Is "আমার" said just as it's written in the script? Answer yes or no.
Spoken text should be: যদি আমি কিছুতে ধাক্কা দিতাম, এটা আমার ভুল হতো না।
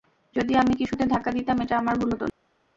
yes